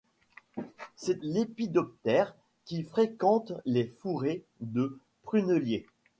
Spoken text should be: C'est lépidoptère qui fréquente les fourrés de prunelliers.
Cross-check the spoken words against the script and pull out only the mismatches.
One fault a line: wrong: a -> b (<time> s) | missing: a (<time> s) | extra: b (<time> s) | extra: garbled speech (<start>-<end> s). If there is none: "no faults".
no faults